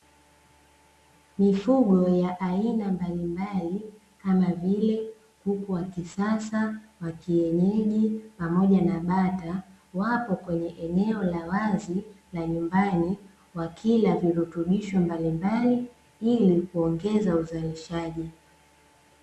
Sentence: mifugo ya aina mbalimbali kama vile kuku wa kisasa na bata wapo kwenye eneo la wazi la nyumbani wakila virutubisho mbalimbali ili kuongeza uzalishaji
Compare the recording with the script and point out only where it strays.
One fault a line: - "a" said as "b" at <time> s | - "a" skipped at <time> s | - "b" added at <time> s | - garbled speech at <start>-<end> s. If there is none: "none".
- "wa kienyeji pamoja" added at 7.0 s